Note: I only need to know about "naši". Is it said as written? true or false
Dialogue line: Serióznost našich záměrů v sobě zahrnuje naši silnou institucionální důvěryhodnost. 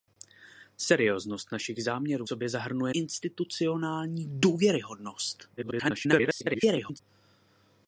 false